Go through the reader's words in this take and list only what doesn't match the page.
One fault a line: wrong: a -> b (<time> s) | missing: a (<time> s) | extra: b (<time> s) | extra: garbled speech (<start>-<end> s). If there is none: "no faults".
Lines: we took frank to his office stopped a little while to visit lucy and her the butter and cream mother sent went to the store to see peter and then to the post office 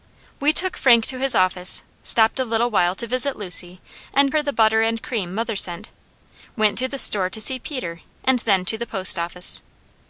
no faults